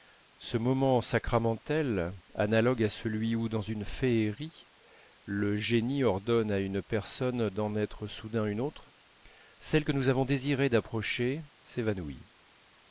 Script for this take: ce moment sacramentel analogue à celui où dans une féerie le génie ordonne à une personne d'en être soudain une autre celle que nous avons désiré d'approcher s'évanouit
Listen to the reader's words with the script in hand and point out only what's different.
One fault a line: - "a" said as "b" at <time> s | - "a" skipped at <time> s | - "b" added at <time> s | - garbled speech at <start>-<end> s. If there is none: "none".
none